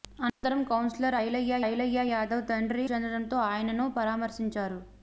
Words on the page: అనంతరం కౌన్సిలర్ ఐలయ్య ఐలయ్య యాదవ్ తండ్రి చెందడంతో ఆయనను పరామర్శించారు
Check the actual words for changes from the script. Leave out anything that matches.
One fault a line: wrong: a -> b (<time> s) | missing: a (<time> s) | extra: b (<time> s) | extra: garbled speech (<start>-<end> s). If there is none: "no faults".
no faults